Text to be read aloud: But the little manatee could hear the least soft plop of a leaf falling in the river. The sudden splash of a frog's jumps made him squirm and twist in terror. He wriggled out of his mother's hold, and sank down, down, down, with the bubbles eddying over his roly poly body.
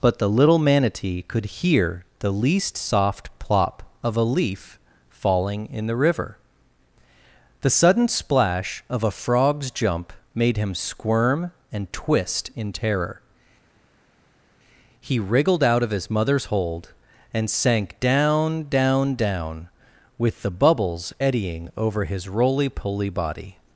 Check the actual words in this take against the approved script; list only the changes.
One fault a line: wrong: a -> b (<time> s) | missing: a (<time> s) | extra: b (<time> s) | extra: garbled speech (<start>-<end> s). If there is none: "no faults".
wrong: jumps -> jump (9.7 s)